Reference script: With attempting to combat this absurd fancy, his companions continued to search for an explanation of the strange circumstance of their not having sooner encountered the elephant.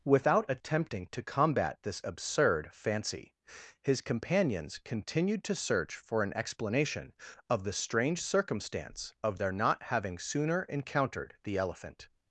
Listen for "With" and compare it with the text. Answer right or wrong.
wrong